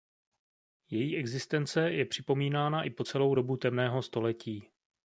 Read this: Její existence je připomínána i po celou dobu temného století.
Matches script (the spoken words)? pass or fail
pass